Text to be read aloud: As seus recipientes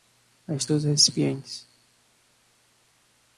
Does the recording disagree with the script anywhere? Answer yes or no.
no